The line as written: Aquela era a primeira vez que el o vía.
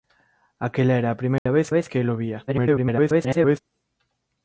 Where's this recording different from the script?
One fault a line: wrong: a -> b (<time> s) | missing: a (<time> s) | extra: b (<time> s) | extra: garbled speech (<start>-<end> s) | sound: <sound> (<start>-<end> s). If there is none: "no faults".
sound: dropout (1.4-1.5 s)
extra: vez (1.7 s)
extra: garbled speech (2.5-3.6 s)